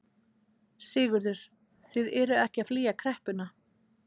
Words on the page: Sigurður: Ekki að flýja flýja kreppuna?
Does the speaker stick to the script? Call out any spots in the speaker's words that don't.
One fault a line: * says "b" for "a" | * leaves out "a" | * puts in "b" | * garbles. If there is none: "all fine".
* puts in "Þið eruð"
* leaves out "flýja"